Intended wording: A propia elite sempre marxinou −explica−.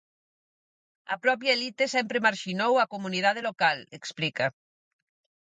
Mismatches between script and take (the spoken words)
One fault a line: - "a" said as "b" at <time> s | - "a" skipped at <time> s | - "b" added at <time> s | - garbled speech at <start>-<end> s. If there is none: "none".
- "a comunidade local" added at 2.8 s